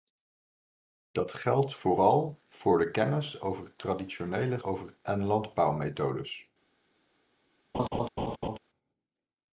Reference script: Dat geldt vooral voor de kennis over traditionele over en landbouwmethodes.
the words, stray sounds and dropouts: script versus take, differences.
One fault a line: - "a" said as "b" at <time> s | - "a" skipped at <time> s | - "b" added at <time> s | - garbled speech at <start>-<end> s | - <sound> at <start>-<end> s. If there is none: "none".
- laugh at 7.7-8.6 s